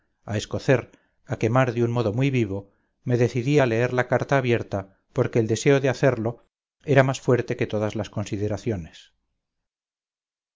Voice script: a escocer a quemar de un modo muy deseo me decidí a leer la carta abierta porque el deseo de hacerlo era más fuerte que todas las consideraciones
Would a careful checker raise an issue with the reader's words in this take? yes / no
yes